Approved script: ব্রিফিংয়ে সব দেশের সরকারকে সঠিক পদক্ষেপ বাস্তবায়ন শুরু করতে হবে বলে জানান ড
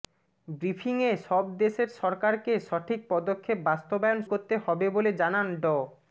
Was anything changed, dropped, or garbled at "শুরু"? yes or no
yes